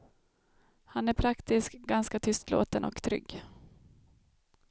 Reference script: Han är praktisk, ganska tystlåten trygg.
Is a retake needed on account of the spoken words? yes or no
yes